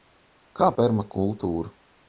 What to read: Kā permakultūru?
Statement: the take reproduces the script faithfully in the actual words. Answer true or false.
true